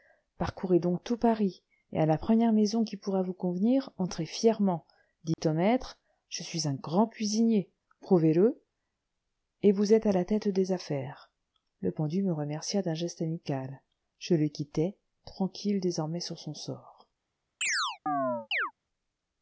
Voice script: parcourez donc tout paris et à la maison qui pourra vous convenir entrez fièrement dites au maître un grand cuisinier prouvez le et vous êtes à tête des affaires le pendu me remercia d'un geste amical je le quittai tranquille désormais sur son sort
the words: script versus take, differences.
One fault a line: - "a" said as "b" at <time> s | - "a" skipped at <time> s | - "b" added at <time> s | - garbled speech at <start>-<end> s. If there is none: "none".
- "première" added at 2.2 s
- "je suis" added at 6.3 s
- "la" added at 10.1 s